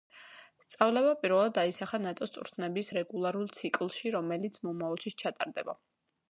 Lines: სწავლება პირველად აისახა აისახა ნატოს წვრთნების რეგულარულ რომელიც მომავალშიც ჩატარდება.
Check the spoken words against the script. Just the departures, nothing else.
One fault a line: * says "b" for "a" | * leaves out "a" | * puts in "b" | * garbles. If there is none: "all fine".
* leaves out "აისახა"
* puts in "ციკლში"